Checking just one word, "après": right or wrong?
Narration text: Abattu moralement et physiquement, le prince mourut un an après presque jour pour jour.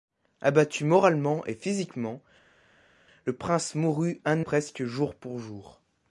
wrong